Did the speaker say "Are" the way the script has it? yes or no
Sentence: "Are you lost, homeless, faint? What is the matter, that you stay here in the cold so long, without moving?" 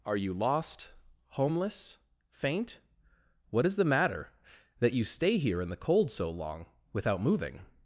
yes